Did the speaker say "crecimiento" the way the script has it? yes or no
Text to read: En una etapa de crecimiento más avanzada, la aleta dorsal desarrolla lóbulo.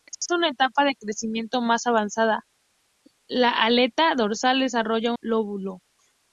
yes